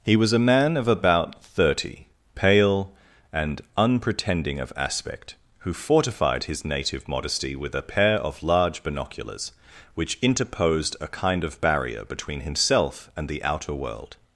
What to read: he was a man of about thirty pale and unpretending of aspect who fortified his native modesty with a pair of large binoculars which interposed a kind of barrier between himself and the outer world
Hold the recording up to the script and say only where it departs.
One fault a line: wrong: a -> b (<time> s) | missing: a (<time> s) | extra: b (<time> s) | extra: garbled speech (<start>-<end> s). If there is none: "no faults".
no faults